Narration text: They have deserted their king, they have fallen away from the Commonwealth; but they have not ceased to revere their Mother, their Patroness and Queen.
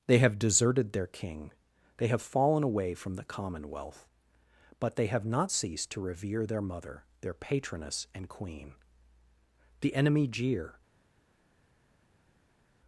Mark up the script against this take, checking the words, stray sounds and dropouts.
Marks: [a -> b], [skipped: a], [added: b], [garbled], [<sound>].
They have deserted their king, they have fallen away from the Commonwealth; but they have not ceased to revere their Mother, their Patroness and Queen. [added: The enemy jeer]